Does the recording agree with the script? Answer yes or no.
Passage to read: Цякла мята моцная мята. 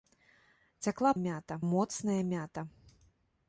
yes